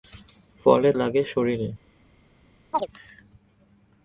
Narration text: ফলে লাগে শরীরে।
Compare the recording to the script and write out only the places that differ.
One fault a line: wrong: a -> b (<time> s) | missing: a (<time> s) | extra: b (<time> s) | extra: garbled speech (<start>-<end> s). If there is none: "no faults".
no faults